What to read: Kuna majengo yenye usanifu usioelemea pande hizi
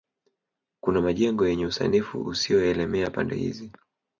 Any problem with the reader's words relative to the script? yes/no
no